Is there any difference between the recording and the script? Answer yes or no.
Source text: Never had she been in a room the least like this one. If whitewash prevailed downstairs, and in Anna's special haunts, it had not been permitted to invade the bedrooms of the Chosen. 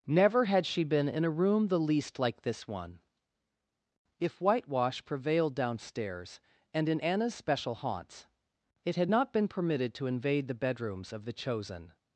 no